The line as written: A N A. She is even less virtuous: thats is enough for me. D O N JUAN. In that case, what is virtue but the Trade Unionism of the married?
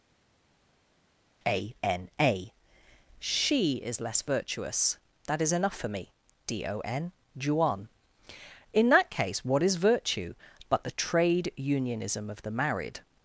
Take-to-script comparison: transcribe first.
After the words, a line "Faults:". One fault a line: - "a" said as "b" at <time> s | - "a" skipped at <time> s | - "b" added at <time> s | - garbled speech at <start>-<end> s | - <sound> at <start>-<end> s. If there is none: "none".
A N A. She is less virtuous: that is enough for me. D O N JUAN. In that case, what is virtue but the Trade Unionism of the married?
Faults:
- "even" skipped at 4.0 s
- "thats" said as "that" at 5.3 s